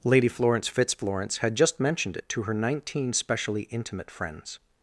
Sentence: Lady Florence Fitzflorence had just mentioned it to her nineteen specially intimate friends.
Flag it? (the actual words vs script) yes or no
no